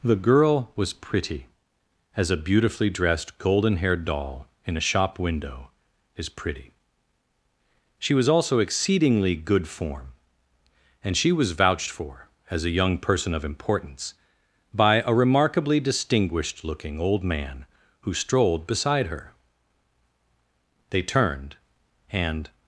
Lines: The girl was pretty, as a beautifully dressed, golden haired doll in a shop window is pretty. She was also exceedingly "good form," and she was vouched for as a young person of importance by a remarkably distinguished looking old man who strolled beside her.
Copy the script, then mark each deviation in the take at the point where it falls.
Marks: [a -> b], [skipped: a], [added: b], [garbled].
The girl was pretty, as a beautifully dressed, golden haired doll in a shop window is pretty. She was also exceedingly "good form," and she was vouched for as a young person of importance by a remarkably distinguished looking old man who strolled beside her. [added: They turned and]